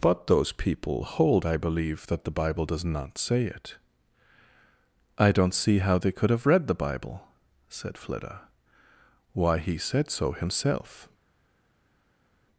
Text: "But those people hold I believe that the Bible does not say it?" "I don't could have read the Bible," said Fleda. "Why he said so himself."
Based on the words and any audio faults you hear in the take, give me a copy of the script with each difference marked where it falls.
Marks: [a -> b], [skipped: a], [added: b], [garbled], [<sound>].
"But those people hold I believe that the Bible does not say it?" "I don't [added: see how they] could have read the Bible," said Fleda. "Why he said so himself."